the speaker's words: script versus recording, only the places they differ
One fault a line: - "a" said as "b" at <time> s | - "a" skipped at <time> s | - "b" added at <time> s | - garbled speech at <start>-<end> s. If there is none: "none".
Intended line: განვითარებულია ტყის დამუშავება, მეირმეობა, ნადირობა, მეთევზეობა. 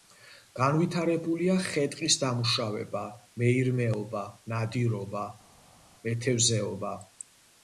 - "ხე" added at 1.6 s